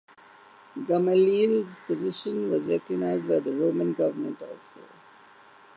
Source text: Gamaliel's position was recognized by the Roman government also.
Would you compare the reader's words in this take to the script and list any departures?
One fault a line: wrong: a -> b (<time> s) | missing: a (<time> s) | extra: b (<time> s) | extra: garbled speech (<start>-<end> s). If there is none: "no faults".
no faults